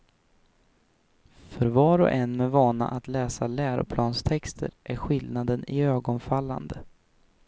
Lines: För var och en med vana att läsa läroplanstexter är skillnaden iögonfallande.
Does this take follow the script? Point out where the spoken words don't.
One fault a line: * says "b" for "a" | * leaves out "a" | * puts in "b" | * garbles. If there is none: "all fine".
all fine